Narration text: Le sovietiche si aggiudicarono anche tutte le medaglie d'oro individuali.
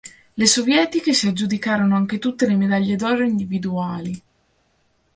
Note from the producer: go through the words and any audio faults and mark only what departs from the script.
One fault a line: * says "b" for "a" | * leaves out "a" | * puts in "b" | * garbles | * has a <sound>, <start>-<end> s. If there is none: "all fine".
all fine